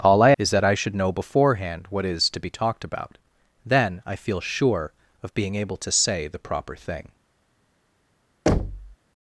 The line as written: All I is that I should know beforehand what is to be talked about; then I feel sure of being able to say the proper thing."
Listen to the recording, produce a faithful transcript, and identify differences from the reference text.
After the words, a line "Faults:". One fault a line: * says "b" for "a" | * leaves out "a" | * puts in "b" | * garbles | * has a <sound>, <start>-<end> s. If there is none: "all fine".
All I is that I should know beforehand what is to be talked about; then I feel sure of being able to say the proper thing."
Faults:
* has a thud, 8.5-9.0 s